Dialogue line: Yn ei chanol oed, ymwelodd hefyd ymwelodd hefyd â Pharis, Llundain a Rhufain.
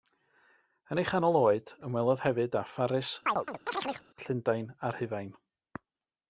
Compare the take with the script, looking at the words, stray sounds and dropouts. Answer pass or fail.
fail